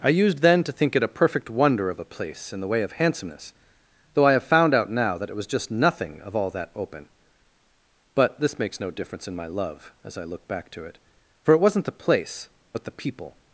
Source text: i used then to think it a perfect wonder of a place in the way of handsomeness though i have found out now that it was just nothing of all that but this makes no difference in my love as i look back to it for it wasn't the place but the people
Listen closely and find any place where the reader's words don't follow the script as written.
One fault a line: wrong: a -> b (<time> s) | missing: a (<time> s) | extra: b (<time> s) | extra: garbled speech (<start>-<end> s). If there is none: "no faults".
extra: open (6.7 s)